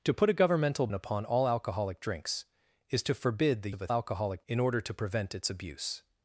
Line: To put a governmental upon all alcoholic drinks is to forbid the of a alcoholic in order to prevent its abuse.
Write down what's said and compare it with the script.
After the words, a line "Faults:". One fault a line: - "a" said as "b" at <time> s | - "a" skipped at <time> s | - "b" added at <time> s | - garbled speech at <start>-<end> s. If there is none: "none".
To put a governmental upon all alcoholic drinks is to forbid the of a alcoholic in order to prevent its abuse.
Faults:
none